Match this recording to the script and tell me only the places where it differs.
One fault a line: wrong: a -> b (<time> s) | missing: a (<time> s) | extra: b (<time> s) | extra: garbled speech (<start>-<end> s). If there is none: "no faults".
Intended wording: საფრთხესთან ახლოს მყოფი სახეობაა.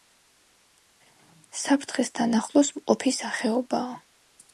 no faults